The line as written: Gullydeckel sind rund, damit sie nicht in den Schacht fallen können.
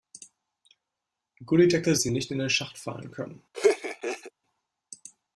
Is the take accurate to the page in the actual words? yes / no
no